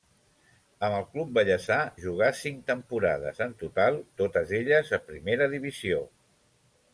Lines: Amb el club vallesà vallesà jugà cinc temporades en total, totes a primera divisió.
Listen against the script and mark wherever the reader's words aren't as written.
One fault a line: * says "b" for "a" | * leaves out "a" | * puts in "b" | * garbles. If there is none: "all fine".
* leaves out "vallesà"
* puts in "elles"